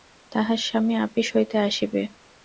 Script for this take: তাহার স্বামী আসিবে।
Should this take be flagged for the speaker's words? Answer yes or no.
yes